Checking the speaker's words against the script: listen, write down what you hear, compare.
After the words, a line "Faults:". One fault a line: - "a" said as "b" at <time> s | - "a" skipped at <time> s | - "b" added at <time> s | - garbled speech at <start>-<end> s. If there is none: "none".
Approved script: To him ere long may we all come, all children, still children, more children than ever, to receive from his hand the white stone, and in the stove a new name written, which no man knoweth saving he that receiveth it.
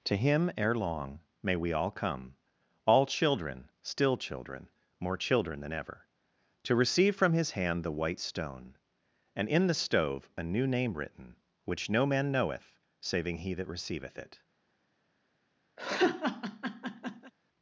To him ere long may we all come, all children, still children, more children than ever, to receive from his hand the white stone, and in the stove a new name written, which no man knoweth saving he that receiveth it.
Faults:
none